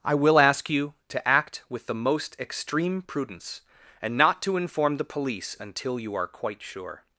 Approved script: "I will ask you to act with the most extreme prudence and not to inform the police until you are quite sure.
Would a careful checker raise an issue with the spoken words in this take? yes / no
no